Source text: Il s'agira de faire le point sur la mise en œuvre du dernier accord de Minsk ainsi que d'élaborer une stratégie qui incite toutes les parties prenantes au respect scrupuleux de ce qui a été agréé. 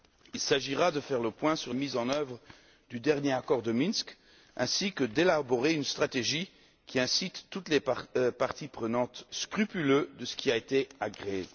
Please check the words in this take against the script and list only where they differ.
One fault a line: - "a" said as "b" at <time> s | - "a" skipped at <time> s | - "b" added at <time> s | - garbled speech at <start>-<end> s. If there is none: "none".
- "la" skipped at 1.7 s
- "au respect" skipped at 9.3 s